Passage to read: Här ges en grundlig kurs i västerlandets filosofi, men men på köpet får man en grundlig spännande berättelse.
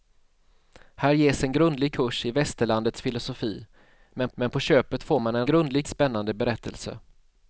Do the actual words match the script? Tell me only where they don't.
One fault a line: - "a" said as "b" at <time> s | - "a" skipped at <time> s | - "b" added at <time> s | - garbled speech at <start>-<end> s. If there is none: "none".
none